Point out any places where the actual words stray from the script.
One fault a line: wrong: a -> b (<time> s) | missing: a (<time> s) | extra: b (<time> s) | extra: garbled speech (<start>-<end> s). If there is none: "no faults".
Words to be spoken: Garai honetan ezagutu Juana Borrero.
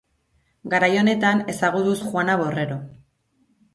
no faults